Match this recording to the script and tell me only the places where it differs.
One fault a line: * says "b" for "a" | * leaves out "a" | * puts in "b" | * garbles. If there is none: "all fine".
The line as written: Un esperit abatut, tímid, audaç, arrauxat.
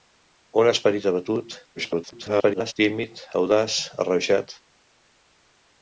* garbles